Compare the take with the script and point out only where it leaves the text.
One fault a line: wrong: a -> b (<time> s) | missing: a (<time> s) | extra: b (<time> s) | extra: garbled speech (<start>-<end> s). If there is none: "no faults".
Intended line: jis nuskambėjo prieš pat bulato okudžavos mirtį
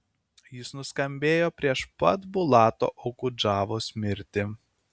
no faults